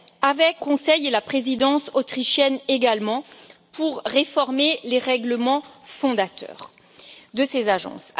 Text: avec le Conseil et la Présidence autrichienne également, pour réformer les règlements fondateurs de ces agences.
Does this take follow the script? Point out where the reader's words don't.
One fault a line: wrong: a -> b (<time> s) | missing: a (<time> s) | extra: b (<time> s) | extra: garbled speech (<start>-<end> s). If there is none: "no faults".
missing: le (0.6 s)